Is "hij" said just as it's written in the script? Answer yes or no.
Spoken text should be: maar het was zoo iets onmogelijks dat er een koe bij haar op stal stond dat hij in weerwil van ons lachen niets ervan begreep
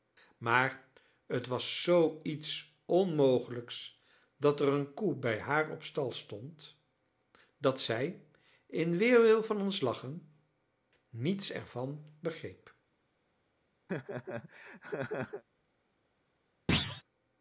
no